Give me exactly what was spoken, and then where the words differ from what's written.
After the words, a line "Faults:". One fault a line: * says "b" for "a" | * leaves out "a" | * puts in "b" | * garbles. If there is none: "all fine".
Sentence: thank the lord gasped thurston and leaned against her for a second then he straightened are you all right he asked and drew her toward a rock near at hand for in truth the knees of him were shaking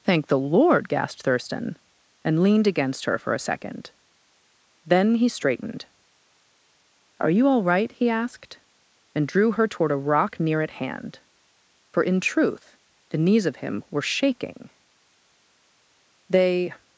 thank the lord gasped thurston and leaned against her for a second then he straightened are you all right he asked and drew her toward a rock near at hand for in truth the knees of him were shaking they
Faults:
* puts in "they"